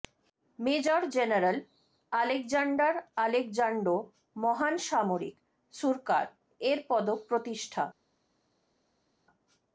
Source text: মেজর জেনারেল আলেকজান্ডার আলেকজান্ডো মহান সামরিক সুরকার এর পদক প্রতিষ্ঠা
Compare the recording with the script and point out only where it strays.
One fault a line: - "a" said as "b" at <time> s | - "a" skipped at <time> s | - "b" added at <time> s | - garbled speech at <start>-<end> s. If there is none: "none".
none